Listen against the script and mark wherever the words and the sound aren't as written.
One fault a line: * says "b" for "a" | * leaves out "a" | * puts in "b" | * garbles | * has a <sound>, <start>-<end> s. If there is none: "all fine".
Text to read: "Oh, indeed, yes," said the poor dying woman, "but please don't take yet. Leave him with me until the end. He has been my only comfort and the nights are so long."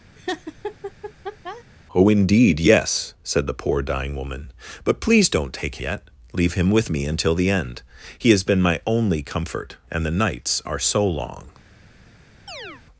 * has a laugh, 0.2-1.6 s
* has a chirp, 12.5-12.8 s